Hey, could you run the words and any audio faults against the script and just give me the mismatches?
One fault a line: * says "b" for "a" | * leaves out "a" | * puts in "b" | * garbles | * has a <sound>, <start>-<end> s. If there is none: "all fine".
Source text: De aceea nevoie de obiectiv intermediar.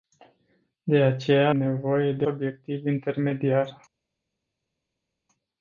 all fine